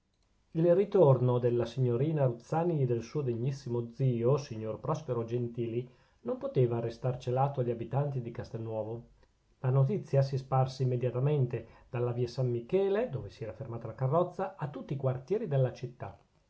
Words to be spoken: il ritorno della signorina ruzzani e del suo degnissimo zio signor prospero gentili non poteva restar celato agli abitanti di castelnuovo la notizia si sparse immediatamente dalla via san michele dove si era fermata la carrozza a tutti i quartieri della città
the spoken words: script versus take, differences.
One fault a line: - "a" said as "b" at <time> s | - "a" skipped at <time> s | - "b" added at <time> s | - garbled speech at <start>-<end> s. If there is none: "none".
none